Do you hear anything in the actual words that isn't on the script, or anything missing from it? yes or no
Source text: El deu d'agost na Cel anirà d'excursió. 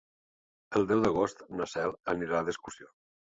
no